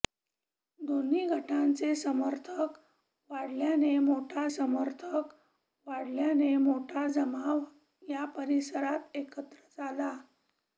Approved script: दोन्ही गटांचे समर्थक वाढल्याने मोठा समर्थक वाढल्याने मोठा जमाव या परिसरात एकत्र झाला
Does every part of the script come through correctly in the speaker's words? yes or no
yes